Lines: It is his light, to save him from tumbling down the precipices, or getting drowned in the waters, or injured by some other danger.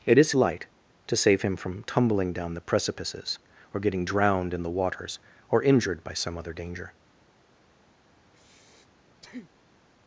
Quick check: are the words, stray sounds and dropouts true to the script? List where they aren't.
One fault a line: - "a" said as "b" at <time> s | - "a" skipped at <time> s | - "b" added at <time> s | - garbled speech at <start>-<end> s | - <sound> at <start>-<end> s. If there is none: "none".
- "his" skipped at 0.3 s
- breath at 8.2-9.8 s